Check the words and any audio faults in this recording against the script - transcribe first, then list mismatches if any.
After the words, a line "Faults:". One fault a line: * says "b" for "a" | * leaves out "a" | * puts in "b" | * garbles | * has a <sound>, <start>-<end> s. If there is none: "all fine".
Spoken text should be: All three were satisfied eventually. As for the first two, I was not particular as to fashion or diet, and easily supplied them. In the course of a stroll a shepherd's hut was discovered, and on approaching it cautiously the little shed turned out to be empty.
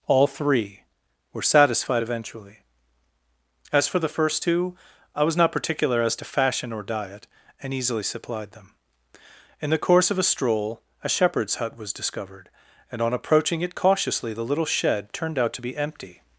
All three were satisfied eventually. As for the first two, I was not particular as to fashion or diet, and easily supplied them. In the course of a stroll a shepherd's hut was discovered, and on approaching it cautiously the little shed turned out to be empty.
Faults:
all fine